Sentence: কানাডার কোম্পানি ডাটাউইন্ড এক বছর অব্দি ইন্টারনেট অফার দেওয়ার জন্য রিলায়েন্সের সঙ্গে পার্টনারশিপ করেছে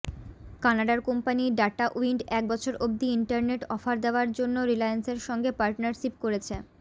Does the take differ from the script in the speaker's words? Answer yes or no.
no